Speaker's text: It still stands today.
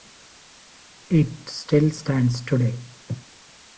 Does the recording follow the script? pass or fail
pass